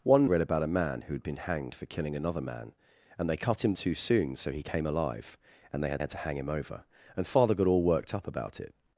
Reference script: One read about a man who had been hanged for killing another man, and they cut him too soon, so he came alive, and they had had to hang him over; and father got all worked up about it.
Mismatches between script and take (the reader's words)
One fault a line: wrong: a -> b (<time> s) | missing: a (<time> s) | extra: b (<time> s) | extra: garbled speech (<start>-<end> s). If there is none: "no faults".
no faults